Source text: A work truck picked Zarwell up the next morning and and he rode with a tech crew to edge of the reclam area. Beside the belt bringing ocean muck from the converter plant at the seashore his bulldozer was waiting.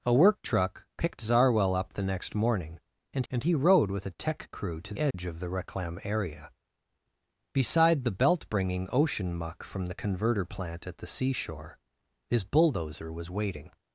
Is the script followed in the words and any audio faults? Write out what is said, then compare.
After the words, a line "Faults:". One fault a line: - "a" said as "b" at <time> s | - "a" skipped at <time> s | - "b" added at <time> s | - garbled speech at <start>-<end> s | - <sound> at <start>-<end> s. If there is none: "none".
A work truck picked Zarwell up the next morning and and he rode with a tech crew to edge of the reclam area. Beside the belt bringing ocean muck from the converter plant at the seashore his bulldozer was waiting.
Faults:
- dropout at 5.1-5.1 s